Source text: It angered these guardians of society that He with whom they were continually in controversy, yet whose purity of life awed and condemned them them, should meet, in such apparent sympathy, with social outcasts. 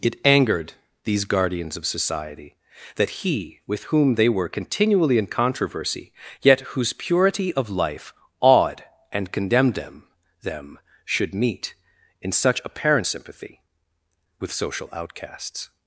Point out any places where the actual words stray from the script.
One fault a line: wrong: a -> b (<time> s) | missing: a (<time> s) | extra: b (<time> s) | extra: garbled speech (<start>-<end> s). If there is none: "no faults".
no faults